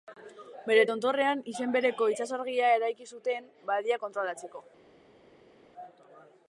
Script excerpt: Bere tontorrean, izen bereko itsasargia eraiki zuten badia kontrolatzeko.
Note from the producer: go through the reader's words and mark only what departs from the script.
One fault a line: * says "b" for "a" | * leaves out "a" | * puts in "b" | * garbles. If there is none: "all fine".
all fine